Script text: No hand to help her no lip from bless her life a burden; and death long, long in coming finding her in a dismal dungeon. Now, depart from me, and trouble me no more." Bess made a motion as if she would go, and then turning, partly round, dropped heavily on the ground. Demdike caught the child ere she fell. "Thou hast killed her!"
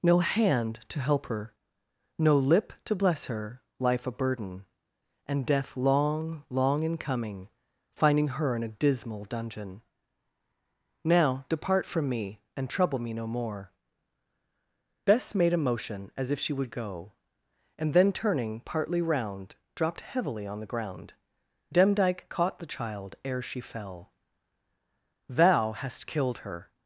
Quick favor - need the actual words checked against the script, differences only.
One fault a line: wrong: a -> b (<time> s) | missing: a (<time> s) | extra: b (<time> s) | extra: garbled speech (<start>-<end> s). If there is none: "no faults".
wrong: from -> to (2.9 s)